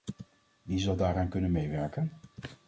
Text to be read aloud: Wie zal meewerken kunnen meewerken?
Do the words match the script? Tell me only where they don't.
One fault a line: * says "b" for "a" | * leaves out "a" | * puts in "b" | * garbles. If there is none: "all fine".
* says "daaraan" for "meewerken"